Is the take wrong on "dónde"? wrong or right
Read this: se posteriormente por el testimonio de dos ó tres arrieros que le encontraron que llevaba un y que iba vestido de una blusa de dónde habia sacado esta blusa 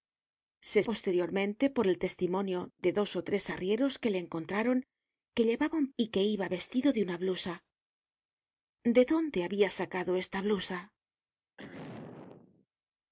right